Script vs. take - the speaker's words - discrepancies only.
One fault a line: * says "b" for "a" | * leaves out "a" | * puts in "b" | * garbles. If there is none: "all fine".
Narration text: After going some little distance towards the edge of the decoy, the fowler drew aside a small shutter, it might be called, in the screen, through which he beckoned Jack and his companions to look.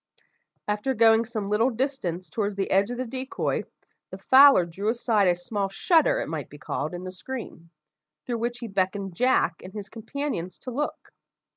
all fine